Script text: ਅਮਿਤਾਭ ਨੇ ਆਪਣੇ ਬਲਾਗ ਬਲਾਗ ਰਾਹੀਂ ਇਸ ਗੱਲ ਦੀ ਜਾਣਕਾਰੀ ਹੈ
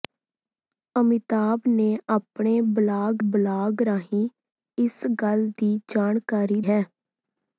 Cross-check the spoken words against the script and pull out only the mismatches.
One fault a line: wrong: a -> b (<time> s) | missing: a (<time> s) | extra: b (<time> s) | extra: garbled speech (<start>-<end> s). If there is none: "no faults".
no faults